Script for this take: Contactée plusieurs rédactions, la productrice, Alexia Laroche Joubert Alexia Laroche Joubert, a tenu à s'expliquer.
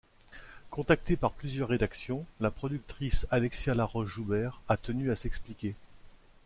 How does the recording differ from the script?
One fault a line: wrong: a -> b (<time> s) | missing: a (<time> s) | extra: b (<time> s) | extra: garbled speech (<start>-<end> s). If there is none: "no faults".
extra: par (1.1 s)
missing: Alexia Laroche Joubert (4.6 s)